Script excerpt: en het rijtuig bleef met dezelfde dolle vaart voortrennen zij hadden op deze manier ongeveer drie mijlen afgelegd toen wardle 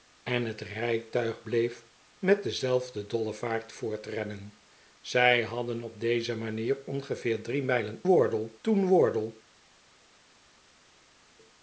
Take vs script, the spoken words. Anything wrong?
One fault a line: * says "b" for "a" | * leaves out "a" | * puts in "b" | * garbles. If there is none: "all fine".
* says "wardle" for "afgelegd"